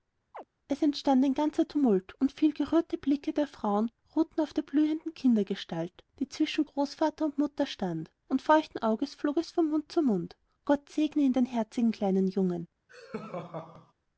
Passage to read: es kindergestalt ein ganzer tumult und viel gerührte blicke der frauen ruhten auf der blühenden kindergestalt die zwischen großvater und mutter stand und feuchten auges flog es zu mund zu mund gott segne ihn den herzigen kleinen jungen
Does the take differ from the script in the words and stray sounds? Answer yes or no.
yes